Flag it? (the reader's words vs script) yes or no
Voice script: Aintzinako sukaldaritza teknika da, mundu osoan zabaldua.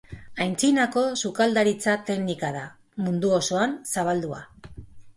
no